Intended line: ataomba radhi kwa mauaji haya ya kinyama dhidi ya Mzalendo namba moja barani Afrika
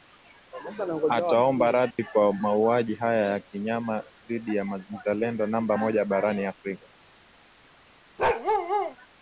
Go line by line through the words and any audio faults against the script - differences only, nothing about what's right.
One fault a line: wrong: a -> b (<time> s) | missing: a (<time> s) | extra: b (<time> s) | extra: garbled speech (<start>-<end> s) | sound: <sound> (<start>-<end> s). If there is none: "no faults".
sound: dropout (1.9-2.0 s)
sound: bark (8.2-9.0 s)